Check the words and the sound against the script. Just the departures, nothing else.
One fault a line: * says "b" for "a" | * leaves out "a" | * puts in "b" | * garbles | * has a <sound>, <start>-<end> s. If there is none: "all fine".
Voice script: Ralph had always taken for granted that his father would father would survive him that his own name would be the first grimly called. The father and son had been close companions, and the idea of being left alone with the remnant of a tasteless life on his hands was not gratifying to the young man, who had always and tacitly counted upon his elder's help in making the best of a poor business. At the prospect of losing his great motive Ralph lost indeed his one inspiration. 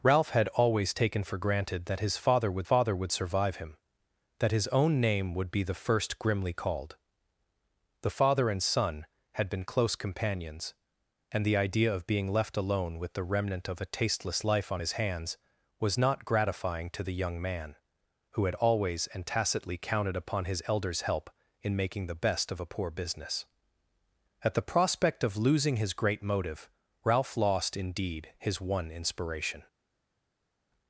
all fine